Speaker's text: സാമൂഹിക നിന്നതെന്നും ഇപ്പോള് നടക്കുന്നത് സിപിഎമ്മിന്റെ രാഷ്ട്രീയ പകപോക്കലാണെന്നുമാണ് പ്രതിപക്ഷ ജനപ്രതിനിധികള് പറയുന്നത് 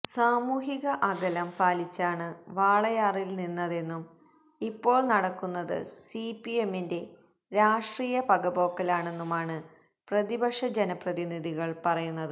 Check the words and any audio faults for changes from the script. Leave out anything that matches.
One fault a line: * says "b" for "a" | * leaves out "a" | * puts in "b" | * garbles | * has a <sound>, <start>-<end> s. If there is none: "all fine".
* puts in "അകലം പാലിച്ചാണ് വാളയാറില്"